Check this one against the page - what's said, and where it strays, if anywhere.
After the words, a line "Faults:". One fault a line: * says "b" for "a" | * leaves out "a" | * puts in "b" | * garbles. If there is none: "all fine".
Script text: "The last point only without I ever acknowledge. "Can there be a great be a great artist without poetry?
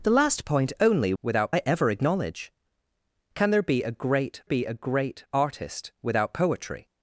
"The last point only without I ever acknowledge. "Can there be a great be a great artist without poetry?
Faults:
all fine